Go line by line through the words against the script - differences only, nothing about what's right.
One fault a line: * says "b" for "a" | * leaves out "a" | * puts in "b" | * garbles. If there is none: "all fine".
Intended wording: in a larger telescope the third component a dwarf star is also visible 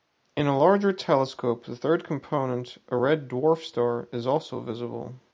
* puts in "red"